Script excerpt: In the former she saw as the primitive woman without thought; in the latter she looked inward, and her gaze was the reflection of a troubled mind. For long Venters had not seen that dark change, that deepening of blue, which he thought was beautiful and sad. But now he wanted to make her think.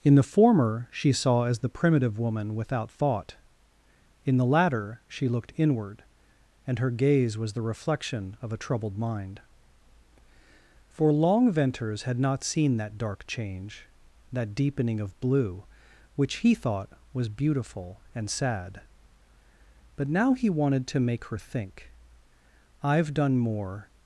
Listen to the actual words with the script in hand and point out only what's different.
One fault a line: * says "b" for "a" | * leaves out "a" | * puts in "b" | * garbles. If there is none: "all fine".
* puts in "I've done more"